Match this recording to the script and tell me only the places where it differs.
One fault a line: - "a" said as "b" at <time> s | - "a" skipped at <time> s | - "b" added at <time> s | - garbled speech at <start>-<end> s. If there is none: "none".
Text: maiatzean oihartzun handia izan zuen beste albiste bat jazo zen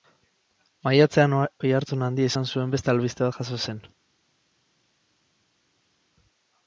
none